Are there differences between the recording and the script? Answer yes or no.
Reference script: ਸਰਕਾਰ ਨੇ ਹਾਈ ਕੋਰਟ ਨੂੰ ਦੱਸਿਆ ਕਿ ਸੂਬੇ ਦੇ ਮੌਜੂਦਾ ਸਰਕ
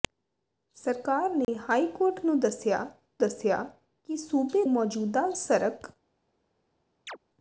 yes